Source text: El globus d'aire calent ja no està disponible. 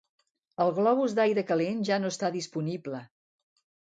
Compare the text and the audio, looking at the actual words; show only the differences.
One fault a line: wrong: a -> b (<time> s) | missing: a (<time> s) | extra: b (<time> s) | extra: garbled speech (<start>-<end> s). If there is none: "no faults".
no faults